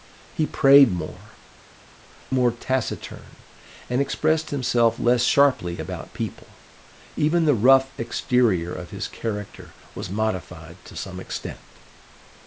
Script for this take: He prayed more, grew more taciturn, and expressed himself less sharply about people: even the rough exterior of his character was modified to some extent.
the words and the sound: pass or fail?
fail